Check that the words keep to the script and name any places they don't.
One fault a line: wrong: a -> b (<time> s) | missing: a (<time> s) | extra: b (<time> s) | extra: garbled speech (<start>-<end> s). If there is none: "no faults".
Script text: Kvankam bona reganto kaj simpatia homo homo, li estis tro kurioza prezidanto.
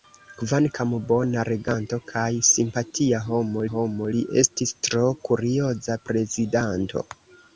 no faults